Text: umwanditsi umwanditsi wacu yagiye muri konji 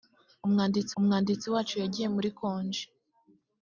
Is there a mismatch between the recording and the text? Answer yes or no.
no